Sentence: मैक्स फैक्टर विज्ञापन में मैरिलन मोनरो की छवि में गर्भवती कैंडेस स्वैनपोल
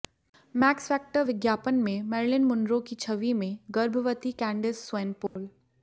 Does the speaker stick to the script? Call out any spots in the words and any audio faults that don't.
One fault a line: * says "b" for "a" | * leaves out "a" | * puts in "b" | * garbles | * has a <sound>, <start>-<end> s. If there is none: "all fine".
* has a dropout, 5.3-5.4 s